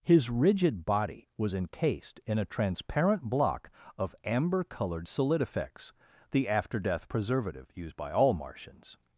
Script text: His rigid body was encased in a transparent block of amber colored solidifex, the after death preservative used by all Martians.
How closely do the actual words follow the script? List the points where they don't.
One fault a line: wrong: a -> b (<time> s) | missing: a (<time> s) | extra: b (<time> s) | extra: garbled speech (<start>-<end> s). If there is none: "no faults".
no faults